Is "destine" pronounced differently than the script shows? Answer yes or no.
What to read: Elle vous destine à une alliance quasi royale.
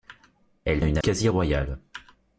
yes